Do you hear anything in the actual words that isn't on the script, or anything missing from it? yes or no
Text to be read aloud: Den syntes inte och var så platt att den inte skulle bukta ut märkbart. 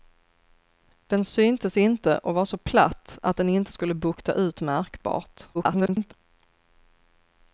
yes